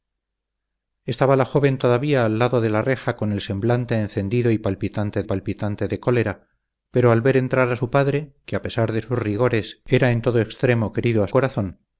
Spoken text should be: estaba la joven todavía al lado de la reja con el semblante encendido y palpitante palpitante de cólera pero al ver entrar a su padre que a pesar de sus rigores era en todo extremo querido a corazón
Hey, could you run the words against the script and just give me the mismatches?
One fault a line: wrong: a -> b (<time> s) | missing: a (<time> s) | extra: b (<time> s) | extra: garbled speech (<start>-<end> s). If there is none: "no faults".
no faults